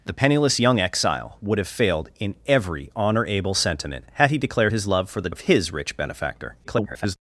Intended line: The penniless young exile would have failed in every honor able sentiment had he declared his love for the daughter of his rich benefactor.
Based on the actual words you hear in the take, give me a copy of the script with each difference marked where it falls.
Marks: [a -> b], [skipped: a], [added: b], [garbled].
The penniless young exile would have failed in every honor able sentiment had he declared his love for the [skipped: daughter] of his rich benefactor. [garbled]